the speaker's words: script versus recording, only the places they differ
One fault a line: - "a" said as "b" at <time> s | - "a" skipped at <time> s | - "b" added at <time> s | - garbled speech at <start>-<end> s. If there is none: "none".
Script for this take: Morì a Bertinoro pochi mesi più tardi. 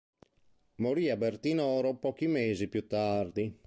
none